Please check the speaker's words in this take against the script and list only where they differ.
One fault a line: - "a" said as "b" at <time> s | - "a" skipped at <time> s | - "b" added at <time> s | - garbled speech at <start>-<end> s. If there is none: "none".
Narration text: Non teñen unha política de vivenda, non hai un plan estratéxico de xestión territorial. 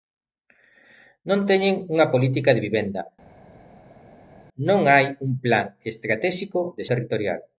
- "xestión" skipped at 6.8 s